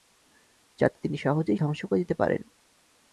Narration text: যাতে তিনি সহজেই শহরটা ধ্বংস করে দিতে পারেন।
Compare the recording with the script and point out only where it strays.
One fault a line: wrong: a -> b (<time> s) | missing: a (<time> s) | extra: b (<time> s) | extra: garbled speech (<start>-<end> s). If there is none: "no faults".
missing: শহরটা (1.6 s)